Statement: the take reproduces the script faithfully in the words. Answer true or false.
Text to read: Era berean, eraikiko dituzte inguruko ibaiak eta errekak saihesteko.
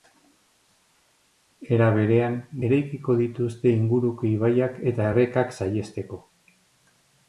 true